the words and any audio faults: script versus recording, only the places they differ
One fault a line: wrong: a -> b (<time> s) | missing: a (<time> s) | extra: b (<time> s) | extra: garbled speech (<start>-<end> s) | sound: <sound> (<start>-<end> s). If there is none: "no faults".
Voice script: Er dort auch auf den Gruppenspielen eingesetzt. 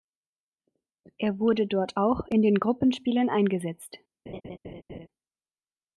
extra: wurde (1.4 s)
wrong: auf -> in (2.3 s)
sound: laugh (4.3-5.1 s)